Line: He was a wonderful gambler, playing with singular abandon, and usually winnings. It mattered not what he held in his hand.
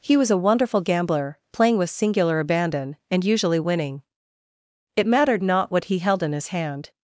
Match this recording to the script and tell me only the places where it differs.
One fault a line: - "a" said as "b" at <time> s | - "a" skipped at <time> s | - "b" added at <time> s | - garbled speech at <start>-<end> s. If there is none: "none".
- "winnings" said as "winning" at 3.6 s